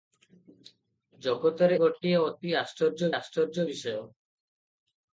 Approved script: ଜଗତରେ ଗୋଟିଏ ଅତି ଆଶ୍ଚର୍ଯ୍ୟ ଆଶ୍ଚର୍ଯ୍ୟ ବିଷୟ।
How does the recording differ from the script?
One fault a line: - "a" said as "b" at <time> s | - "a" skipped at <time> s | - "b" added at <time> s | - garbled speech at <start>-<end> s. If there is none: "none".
none